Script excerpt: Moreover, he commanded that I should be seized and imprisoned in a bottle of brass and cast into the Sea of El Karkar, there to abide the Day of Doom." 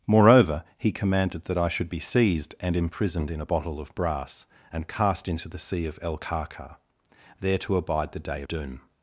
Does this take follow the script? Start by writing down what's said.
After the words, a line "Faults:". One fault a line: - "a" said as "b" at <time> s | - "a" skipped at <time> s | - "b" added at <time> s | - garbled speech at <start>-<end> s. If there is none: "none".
Moreover, he commanded that I should be seized and imprisoned in a bottle of brass and cast into the Sea of El Karkar, there to abide the Day Doom."
Faults:
- "of" skipped at 8.4 s